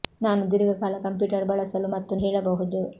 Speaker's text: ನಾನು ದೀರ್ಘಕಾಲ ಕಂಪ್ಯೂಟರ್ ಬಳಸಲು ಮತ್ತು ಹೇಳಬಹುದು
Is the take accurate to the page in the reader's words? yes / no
yes